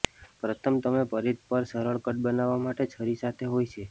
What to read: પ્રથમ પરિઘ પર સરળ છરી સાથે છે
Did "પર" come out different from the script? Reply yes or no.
no